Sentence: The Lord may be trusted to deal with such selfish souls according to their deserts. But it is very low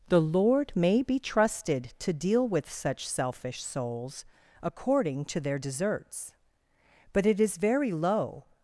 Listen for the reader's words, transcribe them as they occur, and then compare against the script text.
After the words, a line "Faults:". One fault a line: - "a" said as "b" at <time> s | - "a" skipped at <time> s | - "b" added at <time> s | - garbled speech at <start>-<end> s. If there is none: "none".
The Lord may be trusted to deal with such selfish souls according to their deserts. But it is very low
Faults:
none